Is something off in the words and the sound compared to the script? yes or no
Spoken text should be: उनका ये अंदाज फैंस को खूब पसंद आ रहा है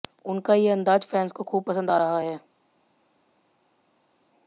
no